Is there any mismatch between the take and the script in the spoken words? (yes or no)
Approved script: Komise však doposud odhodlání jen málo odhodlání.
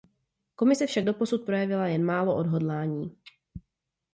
yes